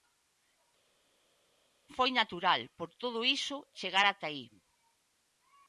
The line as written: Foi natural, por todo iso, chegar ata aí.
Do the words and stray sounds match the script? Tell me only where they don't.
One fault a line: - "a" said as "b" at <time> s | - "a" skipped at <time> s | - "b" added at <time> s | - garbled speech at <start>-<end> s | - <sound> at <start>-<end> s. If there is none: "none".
none